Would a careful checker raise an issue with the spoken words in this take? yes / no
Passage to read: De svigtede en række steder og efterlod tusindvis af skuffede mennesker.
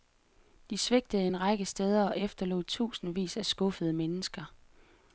no